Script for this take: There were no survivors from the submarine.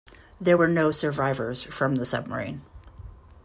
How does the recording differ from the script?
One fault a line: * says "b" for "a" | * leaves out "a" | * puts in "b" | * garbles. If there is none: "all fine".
all fine